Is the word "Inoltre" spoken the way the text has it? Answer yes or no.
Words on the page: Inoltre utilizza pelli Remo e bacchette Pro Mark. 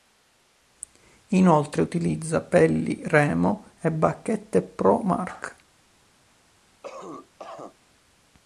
yes